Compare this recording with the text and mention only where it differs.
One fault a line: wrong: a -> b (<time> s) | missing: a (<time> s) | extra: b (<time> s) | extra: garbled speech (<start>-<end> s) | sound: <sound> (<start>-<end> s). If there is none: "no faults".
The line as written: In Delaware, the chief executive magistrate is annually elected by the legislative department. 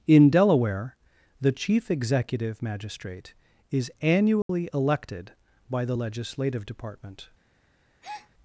sound: dropout (4.4-4.5 s)
sound: breath (8.0-8.3 s)